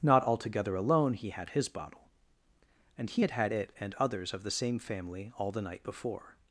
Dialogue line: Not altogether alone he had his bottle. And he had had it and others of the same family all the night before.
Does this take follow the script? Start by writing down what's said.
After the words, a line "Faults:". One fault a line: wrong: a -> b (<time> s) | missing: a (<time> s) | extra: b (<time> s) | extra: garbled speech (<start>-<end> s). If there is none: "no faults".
Not altogether alone he had his bottle. And he had had it and others of the same family all the night before.
Faults:
no faults